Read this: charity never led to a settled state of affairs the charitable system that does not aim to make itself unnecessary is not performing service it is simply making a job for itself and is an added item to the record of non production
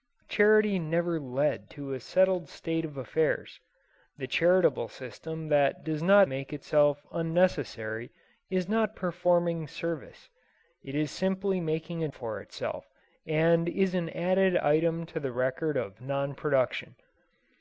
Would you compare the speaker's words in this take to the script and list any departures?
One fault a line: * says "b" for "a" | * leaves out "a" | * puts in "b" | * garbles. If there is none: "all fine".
* leaves out "aim to"
* leaves out "job"